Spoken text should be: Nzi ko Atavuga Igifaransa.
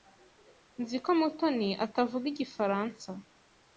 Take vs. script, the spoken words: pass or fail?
fail